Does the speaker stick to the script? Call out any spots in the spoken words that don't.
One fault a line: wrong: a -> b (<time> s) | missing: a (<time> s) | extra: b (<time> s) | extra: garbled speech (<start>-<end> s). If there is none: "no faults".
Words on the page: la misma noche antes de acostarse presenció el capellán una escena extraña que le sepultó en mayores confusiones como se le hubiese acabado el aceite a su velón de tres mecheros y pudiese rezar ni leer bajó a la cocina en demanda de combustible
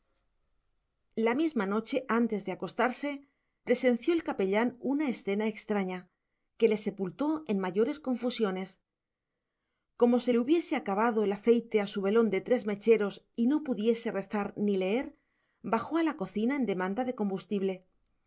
extra: no (13.5 s)